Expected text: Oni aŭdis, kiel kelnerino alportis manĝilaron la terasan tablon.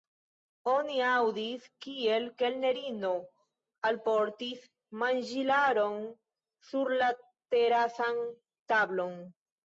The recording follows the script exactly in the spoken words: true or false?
false